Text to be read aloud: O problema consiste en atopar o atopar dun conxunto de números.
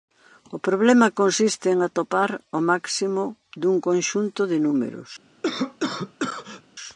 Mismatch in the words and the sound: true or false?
true